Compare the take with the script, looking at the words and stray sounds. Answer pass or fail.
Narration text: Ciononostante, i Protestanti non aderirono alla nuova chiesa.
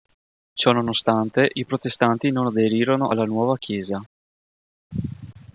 pass